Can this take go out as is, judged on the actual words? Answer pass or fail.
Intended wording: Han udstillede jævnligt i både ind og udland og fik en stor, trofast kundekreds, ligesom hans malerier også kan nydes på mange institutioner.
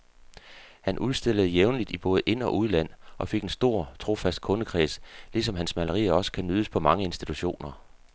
pass